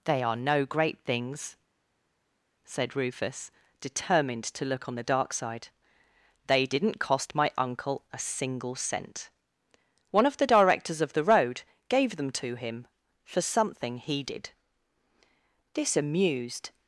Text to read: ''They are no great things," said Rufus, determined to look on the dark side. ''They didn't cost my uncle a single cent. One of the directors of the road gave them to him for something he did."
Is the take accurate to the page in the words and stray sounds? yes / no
no